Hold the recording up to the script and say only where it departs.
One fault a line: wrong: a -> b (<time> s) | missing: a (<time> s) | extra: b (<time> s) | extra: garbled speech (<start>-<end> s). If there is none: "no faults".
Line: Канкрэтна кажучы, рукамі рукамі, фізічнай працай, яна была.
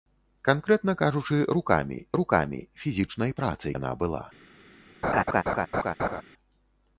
no faults